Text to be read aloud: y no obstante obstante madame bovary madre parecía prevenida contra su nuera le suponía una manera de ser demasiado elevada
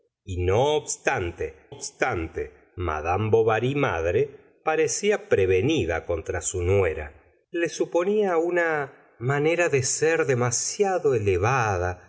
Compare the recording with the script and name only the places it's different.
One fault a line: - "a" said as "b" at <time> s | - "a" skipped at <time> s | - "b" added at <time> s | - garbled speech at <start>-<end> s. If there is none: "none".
none